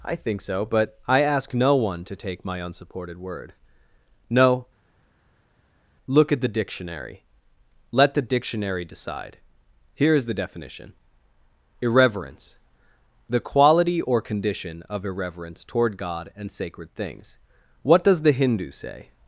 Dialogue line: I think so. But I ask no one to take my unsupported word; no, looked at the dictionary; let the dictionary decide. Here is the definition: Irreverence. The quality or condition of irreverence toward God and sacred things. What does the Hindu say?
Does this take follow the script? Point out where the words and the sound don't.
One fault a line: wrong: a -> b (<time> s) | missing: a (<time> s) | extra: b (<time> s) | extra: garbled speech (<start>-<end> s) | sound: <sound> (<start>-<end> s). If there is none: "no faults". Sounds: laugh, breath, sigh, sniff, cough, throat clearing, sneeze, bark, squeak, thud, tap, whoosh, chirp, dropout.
wrong: looked -> look (6.1 s)